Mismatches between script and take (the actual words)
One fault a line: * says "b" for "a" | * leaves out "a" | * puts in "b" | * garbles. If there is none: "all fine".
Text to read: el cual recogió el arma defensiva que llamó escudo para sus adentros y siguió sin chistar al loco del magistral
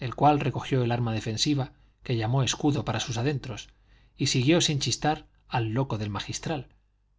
all fine